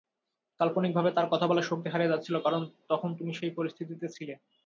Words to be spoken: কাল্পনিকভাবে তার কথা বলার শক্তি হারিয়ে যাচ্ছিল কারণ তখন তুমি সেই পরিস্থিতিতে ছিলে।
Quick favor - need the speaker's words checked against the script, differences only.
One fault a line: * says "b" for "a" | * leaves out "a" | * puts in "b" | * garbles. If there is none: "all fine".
all fine